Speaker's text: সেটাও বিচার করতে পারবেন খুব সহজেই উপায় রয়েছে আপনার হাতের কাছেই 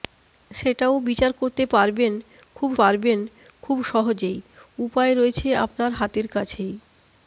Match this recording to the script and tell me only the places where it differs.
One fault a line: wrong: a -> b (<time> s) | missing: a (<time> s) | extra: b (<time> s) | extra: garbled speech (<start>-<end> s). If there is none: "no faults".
extra: পারবেন খুব (2.8 s)